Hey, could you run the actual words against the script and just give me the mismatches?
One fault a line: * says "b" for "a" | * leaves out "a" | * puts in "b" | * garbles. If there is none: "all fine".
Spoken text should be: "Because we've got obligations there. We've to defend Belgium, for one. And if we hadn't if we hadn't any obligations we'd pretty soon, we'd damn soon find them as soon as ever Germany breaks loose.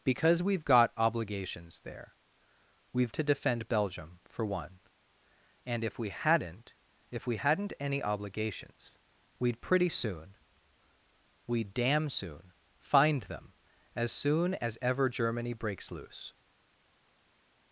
all fine